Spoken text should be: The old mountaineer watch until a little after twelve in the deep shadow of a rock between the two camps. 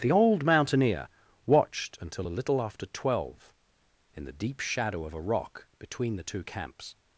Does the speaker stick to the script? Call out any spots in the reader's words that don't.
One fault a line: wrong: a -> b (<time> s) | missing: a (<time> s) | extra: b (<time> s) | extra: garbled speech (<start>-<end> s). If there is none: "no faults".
wrong: watch -> watched (1.4 s)